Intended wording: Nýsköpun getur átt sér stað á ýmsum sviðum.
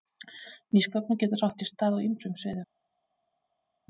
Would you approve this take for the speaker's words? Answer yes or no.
yes